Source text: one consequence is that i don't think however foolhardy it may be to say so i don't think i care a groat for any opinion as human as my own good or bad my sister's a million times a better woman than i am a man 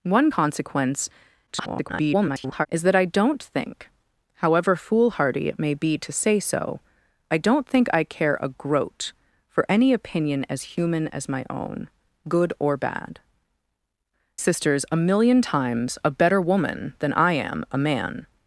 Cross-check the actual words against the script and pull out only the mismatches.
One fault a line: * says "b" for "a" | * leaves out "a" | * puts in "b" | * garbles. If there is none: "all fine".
* garbles
* leaves out "my"